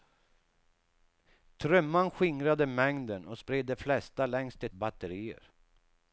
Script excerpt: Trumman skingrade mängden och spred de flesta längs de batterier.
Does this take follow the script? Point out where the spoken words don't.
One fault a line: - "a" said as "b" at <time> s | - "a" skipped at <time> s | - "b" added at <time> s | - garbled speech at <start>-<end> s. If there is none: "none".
none